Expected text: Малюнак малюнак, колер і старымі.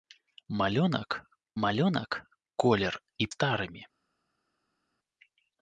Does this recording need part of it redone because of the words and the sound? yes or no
no